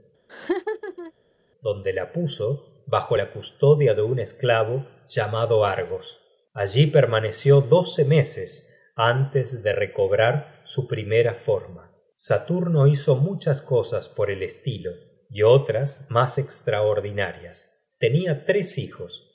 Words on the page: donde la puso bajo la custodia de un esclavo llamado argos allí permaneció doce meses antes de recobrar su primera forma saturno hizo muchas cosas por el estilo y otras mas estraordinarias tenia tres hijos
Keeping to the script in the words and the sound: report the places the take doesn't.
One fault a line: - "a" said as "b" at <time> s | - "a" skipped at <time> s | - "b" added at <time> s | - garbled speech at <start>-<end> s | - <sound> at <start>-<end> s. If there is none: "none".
- laugh at 0.3-1.1 s